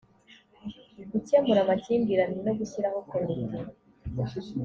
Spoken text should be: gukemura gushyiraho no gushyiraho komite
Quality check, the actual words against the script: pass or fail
fail